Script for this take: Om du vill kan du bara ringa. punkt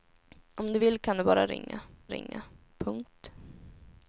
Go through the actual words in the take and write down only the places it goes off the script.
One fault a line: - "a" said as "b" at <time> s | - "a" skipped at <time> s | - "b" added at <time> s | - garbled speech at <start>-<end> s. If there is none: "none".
- "ringa" added at 2.1 s